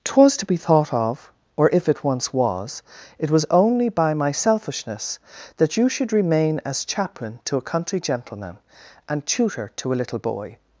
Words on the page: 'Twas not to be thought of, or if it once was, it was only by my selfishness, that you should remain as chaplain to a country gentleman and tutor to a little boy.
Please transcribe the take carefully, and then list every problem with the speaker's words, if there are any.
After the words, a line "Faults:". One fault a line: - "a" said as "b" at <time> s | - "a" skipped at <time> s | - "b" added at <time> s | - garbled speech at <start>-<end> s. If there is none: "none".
'Twas to be thought of, or if it once was, it was only by my selfishness, that you should remain as chaplain to a country gentleman and tutor to a little boy.
Faults:
- "not" skipped at 0.3 s